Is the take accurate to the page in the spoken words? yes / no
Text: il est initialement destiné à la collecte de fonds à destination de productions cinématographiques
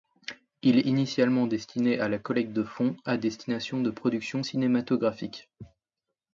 yes